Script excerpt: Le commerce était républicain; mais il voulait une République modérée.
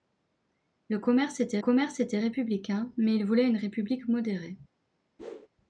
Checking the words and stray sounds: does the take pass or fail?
fail